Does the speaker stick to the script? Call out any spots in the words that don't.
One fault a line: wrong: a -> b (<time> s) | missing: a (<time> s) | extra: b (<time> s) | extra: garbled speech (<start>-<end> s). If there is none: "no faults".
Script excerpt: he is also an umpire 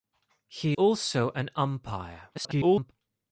missing: is (0.8 s)
extra: garbled speech (2.3-2.9 s)